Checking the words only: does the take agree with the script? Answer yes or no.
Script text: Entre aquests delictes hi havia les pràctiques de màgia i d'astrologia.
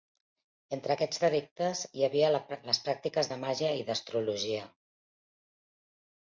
yes